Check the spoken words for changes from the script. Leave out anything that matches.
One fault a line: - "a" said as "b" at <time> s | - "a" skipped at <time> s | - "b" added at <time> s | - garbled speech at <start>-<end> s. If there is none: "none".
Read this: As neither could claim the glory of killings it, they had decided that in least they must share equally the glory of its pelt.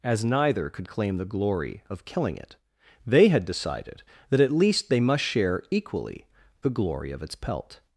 - "killings" said as "killing" at 2.0 s
- "in" said as "at" at 4.4 s